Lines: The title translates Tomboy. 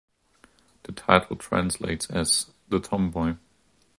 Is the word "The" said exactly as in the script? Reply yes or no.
yes